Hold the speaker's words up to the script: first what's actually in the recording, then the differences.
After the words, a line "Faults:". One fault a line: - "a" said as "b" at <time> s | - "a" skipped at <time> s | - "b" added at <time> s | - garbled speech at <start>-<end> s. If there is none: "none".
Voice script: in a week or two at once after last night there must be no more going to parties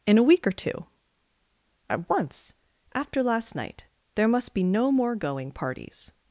in a week or two at once after last night there must be no more going parties
Faults:
- "to" skipped at 5.5 s